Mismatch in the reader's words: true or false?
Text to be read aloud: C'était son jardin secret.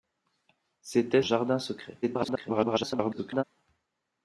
true